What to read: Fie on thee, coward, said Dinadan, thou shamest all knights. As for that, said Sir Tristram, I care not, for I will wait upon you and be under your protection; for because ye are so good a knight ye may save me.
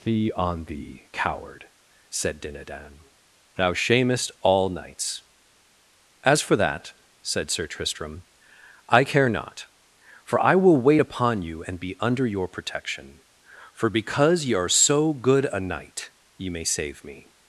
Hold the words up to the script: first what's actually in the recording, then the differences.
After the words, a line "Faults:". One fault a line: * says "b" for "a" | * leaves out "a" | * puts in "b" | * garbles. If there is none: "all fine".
Fie on thee, coward, said Dinadan, thou shamest all knights. As for that, said Sir Tristram, I care not, for I will wait upon you and be under your protection; for because ye are so good a knight ye may save me.
Faults:
all fine